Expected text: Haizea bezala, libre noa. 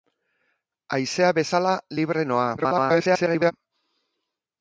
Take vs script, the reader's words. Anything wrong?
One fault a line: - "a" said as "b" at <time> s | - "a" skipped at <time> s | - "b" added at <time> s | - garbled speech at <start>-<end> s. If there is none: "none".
- garbled speech at 2.6-3.5 s